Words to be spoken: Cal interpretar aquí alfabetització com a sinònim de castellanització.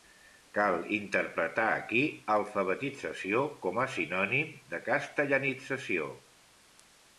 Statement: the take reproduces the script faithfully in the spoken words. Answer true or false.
true